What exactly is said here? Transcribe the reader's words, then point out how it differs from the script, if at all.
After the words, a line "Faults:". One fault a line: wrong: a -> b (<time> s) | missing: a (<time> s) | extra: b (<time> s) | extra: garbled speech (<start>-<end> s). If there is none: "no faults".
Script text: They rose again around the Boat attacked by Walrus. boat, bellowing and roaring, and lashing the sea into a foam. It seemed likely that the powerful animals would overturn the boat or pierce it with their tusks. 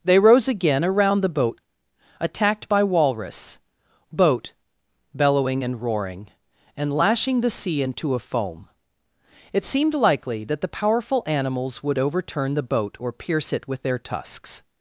They rose again around the Boat attacked by Walrus. boat, bellowing and roaring, and lashing the sea into a foam. It seemed likely that the powerful animals would overturn the boat or pierce it with their tusks.
Faults:
no faults